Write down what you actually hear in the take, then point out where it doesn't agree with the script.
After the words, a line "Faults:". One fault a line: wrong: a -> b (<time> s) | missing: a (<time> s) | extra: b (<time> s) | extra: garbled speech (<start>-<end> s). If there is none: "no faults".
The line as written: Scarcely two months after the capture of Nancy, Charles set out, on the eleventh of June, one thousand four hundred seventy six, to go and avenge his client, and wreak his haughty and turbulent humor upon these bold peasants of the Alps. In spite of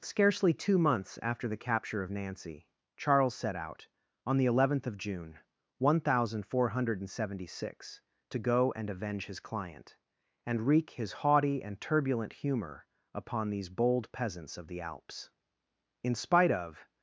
Scarcely two months after the capture of Nancy, Charles set out, on the eleventh of June, one thousand four hundred seventy six, to go and avenge his client, and wreak his haughty and turbulent humor upon these bold peasants of the Alps. In spite of
Faults:
no faults